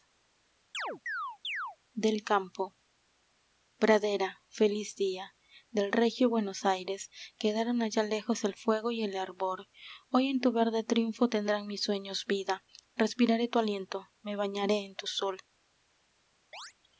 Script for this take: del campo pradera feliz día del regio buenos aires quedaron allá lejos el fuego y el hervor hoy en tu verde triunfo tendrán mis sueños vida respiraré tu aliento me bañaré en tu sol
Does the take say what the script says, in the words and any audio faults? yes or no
no